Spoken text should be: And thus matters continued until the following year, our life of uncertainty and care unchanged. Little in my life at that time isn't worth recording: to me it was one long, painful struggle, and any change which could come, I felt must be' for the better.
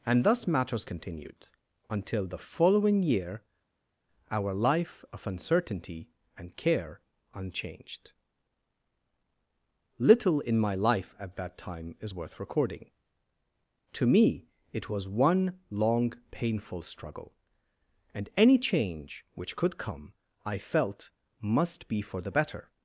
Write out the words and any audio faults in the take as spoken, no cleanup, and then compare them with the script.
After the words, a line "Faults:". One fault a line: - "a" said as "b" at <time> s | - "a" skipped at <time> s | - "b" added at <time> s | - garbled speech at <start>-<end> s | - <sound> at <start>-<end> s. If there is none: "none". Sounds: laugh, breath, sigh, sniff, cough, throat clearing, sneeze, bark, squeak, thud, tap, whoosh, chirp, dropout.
And thus matters continued until the following year, our life of uncertainty and care unchanged. Little in my life at that time is worth recording: to me it was one long, painful struggle, and any change which could come, I felt must be' for the better.
Faults:
- "isn't" said as "is" at 12.0 s